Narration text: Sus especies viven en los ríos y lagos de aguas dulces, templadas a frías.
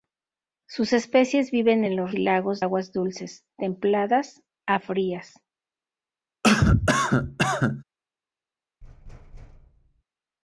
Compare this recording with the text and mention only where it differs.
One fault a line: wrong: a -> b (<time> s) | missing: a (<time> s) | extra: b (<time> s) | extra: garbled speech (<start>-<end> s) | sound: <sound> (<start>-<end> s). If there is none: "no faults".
missing: ríos (2.2 s)
missing: de (2.6 s)
sound: cough (6.4-7.8 s)
sound: thud (8.8-10.0 s)